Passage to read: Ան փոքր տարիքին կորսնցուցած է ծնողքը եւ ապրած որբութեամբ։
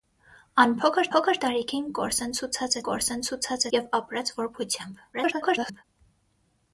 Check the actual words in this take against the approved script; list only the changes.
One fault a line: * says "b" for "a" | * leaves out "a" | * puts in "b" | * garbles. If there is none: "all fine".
* puts in "փոքր"
* says "կորսնցուցած" for "ծնողքը"
* garbles